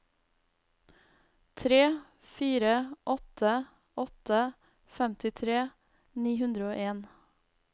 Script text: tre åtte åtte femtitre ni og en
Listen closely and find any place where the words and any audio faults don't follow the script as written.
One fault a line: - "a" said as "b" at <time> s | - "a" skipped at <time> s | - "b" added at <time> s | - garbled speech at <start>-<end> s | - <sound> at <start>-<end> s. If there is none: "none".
- "fire" added at 2.2 s
- "hundre" added at 6.4 s